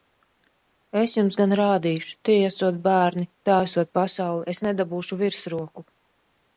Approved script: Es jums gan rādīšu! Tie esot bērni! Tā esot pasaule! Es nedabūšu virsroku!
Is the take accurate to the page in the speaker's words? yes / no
yes